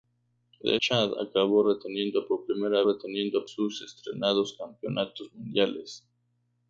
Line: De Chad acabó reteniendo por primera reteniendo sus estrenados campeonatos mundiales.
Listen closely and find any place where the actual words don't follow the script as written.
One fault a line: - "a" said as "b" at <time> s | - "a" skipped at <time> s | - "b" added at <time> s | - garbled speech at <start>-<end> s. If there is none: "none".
none